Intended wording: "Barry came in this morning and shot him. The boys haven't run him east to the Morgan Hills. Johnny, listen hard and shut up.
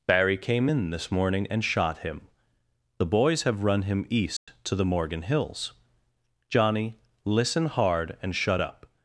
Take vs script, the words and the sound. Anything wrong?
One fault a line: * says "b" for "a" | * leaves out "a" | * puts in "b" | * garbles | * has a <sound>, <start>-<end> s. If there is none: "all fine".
* says "have" for "haven't"
* has a dropout, 4.4-4.5 s